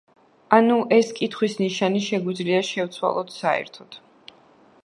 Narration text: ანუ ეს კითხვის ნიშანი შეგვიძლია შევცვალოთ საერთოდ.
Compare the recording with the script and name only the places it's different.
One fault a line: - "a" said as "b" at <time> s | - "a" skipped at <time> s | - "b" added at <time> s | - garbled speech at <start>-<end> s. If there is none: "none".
none